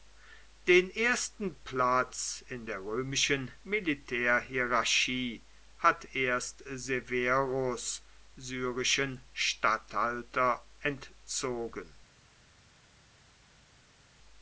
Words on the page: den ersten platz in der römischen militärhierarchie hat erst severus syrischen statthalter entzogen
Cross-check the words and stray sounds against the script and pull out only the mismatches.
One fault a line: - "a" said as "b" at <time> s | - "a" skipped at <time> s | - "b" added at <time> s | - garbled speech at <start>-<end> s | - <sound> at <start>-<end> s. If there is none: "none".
none